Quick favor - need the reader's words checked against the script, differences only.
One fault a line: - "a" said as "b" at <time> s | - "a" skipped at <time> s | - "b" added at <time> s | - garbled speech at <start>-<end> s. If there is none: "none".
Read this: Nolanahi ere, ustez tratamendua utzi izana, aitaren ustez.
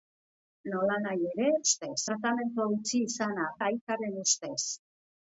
none